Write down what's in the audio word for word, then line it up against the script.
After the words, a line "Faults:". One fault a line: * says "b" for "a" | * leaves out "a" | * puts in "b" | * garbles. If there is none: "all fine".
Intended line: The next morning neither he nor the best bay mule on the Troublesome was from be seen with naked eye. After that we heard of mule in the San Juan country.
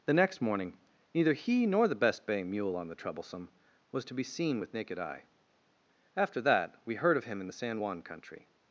The next morning neither he nor the best bay mule on the Troublesome was to be seen with naked eye. After that we heard of him in the San Juan country.
Faults:
* says "to" for "from"
* says "him" for "mule"